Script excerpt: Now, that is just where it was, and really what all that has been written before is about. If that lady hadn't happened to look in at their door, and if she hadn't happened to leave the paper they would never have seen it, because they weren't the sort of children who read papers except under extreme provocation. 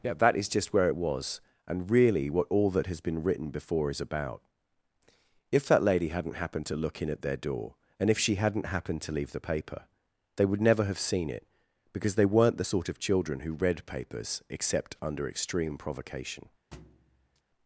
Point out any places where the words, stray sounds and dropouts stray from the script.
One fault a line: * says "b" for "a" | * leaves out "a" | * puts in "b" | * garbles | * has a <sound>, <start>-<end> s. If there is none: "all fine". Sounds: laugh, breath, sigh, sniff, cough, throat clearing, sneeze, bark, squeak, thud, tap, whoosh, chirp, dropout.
* says "Yeah" for "Now"
* has a thud, 16.7-17.4 s